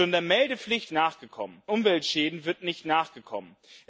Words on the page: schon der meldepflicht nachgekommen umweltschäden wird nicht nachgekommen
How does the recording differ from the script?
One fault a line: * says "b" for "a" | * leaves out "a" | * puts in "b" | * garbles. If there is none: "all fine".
all fine